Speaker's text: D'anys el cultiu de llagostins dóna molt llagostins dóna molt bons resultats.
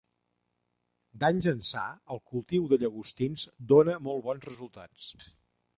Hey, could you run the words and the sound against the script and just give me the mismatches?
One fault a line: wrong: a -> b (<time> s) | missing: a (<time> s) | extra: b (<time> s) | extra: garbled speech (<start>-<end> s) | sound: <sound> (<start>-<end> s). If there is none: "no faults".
extra: ençà (1.5 s)
missing: llagostins dóna molt (4.3 s)